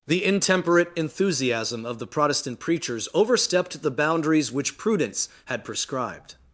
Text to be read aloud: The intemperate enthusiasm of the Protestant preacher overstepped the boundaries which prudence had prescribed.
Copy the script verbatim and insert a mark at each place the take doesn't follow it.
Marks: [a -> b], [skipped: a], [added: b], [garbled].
The intemperate enthusiasm of the Protestant [preacher -> preachers] overstepped the boundaries which prudence had prescribed.